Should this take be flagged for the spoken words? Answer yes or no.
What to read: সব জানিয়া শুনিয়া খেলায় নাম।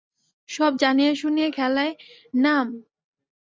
no